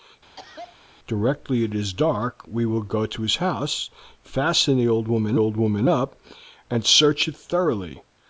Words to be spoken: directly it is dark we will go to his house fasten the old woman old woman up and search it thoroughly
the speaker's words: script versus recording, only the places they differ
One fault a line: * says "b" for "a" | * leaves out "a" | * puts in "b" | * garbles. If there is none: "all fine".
all fine